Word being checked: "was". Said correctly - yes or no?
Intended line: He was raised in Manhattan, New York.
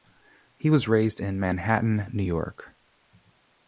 yes